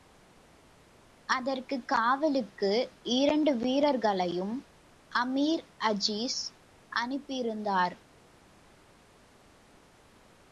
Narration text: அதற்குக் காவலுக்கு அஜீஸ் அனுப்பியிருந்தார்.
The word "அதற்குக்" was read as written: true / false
true